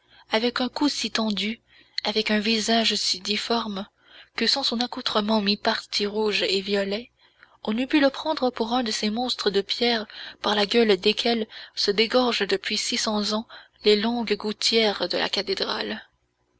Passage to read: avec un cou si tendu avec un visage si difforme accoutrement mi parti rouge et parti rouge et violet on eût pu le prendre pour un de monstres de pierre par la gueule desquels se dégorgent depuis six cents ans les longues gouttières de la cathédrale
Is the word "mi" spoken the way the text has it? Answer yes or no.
no